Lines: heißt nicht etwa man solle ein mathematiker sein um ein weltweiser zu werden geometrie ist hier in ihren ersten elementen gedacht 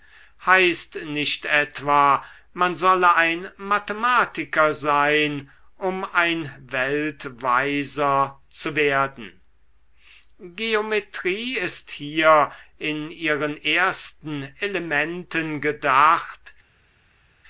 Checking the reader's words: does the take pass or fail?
pass